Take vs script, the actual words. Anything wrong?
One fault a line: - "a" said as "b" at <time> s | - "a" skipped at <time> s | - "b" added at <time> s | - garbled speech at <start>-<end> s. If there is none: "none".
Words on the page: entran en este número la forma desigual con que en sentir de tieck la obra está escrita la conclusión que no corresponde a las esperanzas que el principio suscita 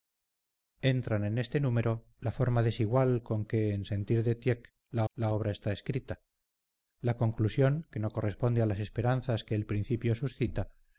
- "la" added at 5.1 s